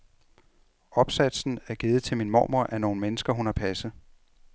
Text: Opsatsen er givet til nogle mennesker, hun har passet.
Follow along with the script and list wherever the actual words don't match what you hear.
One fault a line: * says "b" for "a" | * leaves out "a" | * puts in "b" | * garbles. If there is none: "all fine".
* puts in "min mormor af"